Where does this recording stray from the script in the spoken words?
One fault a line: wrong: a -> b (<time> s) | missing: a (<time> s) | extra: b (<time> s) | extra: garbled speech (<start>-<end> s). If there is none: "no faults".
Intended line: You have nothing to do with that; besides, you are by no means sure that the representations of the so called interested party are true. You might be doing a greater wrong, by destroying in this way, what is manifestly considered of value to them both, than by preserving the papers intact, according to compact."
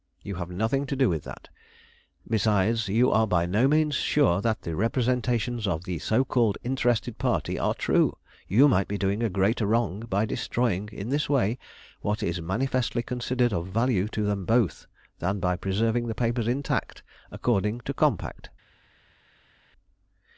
no faults